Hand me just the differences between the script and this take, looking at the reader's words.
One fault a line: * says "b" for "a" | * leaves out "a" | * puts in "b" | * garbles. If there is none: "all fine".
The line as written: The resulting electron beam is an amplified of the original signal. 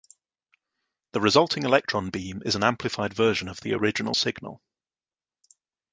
* puts in "version"